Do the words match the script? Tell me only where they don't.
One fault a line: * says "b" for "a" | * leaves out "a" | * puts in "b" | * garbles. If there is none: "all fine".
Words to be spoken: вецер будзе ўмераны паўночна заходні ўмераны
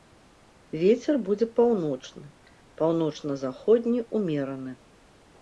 * says "паўночны" for "ўмераны"